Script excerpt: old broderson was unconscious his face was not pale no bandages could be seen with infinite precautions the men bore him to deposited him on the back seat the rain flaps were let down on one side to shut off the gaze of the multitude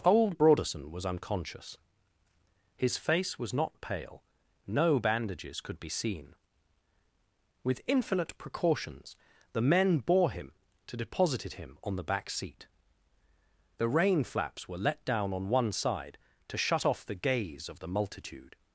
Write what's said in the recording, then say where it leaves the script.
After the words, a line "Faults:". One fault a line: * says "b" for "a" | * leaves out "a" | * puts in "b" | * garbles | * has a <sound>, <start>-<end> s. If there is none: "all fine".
old broderson was unconscious his face was not pale no bandages could be seen with infinite precautions the men bore him to deposited him on the back seat the rain flaps were let down on one side to shut off the gaze of the multitude
Faults:
all fine